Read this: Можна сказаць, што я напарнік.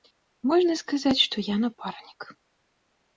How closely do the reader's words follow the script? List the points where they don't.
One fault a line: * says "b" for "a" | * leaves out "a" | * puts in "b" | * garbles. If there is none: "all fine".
all fine